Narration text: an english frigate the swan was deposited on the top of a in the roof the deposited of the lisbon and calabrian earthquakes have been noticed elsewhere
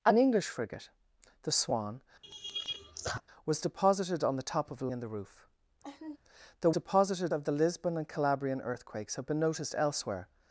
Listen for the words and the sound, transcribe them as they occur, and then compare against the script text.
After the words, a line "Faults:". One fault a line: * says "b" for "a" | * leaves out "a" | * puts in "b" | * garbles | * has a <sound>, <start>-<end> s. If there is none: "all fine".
an english frigate the swan was deposited on the top of a in the roof the deposited of the lisbon and calabrian earthquakes have been noticed elsewhere
Faults:
* has a laugh, 2.2-3.2 s
* has a laugh, 5.8-6.2 s